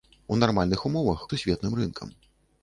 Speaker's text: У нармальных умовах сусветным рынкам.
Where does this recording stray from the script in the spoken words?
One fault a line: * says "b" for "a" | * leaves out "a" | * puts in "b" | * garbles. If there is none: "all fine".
all fine